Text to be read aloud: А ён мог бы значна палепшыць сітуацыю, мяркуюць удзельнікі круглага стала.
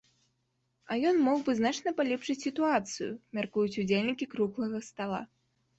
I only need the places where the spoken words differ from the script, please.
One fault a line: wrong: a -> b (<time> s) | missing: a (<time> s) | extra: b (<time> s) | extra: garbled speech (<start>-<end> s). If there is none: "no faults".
no faults